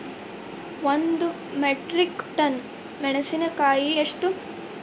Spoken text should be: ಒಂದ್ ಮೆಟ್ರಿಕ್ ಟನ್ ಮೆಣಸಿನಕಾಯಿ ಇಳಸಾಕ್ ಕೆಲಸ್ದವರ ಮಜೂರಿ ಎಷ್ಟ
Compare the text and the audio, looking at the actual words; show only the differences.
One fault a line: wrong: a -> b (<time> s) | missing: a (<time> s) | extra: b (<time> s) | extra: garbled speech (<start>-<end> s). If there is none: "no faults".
missing: ಇಳಸಾಕ್ ಕೆಲಸ್ದವರ ಮಜೂರಿ (3.9 s)